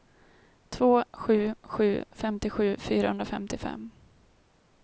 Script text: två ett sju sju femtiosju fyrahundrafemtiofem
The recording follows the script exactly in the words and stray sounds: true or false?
false